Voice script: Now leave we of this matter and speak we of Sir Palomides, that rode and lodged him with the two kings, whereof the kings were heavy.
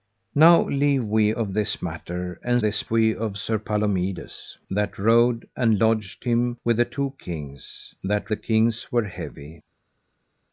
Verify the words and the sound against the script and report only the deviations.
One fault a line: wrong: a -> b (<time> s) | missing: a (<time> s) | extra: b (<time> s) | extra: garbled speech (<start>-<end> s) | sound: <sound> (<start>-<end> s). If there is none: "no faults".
wrong: speak -> this (2.6 s)
wrong: whereof -> that (8.0 s)